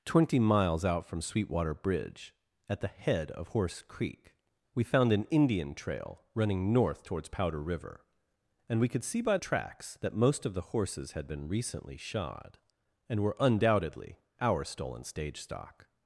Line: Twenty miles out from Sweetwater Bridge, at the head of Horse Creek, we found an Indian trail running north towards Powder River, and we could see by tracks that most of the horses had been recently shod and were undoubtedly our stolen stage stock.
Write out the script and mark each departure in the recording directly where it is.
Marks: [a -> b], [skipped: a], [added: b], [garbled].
Twenty miles out from Sweetwater Bridge, at the head of Horse Creek, we found an Indian trail running north towards Powder River, and we could see by tracks that most of the horses had been recently shod and were undoubtedly our stolen stage stock.